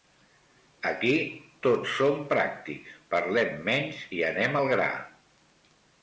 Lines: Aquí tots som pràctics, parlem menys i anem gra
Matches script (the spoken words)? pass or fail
fail